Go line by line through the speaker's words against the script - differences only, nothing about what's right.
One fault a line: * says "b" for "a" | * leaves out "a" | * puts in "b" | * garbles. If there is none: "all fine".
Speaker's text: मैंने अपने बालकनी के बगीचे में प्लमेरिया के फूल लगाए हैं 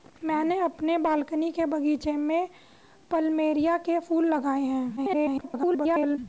* garbles